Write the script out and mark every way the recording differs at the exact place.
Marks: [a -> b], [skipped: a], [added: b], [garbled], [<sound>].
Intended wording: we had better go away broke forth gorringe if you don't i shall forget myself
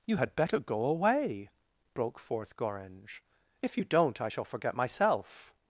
[we -> you] had better go away broke forth gorringe if you don't i shall forget myself